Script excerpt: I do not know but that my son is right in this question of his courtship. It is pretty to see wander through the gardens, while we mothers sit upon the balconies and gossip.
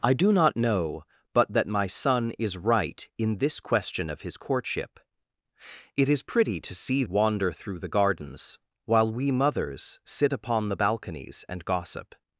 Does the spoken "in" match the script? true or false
true